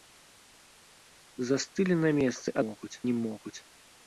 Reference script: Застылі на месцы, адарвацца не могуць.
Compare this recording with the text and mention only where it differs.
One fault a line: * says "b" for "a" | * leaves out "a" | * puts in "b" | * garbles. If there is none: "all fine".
* says "могуць" for "адарвацца"